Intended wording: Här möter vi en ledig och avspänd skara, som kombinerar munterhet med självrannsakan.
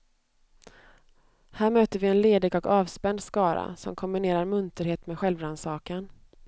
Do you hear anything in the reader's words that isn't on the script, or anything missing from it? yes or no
no